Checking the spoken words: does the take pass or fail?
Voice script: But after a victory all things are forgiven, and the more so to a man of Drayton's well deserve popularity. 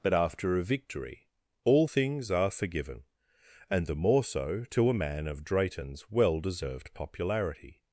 fail